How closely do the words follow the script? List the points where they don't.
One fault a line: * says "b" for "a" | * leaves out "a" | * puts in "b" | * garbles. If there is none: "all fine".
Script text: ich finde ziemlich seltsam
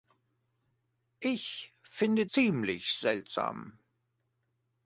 all fine